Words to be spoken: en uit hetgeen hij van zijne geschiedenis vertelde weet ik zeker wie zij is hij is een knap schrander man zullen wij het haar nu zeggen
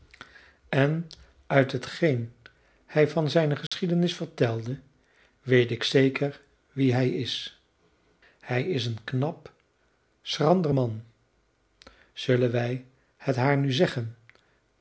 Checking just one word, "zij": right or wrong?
wrong